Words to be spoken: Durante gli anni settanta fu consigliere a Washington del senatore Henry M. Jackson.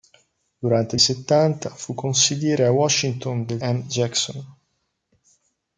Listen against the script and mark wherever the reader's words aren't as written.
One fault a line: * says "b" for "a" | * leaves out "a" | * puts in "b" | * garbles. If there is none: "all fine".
* leaves out "anni"
* leaves out "senatore Henry"